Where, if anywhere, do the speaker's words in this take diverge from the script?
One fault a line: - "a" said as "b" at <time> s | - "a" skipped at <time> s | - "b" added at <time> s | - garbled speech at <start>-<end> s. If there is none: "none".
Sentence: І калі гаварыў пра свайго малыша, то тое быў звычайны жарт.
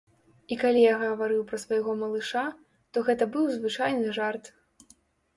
- "я" added at 0.8 s
- "тое" said as "гэта" at 3.1 s